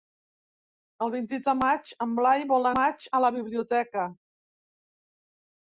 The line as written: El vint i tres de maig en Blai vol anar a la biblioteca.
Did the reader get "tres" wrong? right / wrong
wrong